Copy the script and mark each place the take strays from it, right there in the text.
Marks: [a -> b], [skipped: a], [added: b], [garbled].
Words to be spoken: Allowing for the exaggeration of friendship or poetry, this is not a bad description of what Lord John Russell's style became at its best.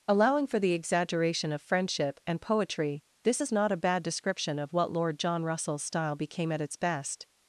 Allowing for the exaggeration of friendship [or -> and] poetry, this is not a bad description of what Lord John Russell's style became at its best.